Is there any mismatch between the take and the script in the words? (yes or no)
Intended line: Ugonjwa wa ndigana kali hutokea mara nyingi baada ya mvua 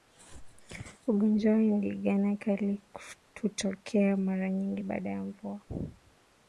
no